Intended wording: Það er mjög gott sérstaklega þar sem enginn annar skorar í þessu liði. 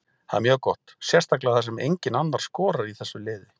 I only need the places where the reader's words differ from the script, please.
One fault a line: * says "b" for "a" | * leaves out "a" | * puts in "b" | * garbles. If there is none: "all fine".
all fine